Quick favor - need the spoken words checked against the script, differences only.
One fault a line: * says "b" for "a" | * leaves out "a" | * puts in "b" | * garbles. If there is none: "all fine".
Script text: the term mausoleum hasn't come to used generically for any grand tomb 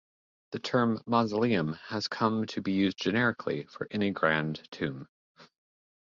* says "has" for "hasn't"
* puts in "be"